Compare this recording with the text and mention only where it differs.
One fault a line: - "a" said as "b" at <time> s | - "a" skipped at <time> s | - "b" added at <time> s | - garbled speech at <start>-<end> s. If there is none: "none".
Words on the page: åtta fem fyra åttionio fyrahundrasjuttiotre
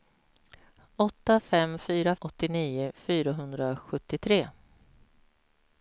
none